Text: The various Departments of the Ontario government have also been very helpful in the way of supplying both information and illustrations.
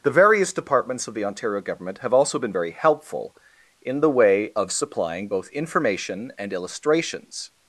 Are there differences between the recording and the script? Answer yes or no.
no